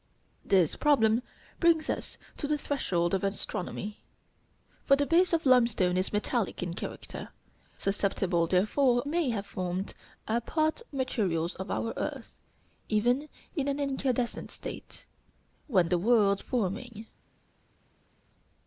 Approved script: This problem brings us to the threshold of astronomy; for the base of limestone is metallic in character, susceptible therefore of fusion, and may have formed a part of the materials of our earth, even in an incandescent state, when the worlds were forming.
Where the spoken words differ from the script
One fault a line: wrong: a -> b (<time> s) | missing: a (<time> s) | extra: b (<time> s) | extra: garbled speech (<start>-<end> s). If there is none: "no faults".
missing: of fusion and (9.0 s)
missing: of the (10.8 s)
missing: were (16.4 s)